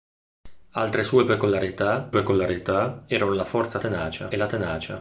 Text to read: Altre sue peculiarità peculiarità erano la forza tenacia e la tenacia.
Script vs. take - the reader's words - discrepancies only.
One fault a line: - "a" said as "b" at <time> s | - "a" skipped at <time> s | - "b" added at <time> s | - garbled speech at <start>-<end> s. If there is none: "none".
none